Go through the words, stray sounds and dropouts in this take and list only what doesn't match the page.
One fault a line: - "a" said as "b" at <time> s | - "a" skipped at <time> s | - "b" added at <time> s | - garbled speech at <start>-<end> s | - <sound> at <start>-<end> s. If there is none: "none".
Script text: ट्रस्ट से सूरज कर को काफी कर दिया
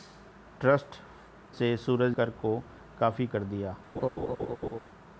- laugh at 4.0-4.8 s